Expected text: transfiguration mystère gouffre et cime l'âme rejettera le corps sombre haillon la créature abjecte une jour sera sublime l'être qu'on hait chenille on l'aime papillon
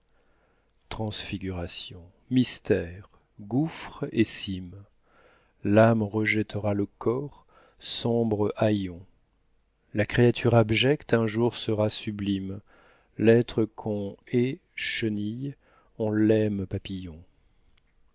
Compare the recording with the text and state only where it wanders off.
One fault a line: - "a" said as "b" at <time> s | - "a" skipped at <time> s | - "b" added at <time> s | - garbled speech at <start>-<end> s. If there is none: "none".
- "une" said as "un" at 11.1 s